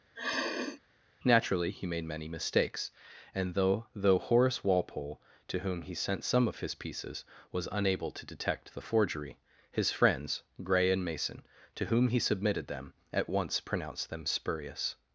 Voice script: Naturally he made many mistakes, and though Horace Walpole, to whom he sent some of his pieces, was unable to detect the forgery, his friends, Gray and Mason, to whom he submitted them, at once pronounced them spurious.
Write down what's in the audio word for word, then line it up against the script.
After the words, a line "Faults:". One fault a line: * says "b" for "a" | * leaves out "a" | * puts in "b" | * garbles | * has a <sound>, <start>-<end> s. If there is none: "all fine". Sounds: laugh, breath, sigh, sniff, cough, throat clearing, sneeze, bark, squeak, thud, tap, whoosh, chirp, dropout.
Naturally he made many mistakes, and though though Horace Walpole, to whom he sent some of his pieces, was unable to detect the forgery, his friends, Gray and Mason, to whom he submitted them, at once pronounced them spurious.
Faults:
* has a sniff, 0.2-0.8 s
* puts in "though"